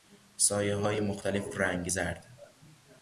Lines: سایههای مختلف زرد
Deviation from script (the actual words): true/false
true